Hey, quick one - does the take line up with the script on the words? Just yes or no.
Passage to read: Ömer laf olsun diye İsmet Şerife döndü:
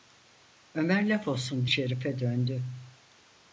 no